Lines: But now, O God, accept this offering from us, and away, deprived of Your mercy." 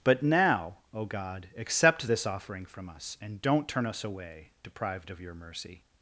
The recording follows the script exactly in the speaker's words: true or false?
false